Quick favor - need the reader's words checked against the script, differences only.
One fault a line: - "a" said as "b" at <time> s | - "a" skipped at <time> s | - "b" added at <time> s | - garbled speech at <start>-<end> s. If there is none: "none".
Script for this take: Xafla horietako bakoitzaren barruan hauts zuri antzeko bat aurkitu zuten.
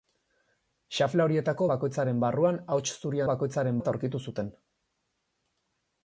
- "antzeko" said as "bakoitzaren" at 3.3 s